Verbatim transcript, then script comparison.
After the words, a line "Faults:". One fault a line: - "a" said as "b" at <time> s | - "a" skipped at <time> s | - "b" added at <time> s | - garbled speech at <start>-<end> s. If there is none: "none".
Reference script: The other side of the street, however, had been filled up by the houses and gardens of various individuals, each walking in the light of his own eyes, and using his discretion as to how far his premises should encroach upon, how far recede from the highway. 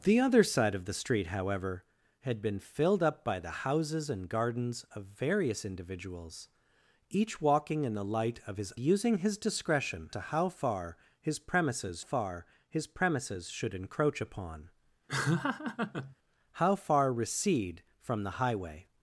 The other side of the street, however, had been filled up by the houses and gardens of various individuals, each walking in the light of his using his discretion to how far his premises far his premises should encroach upon, how far recede from the highway.
Faults:
- "own eyes and" skipped at 8.7 s
- "as" skipped at 10.1 s
- "far his premises" added at 12.0 s